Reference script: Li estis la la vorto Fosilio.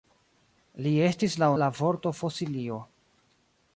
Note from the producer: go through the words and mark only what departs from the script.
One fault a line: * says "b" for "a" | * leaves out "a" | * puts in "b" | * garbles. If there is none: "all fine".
all fine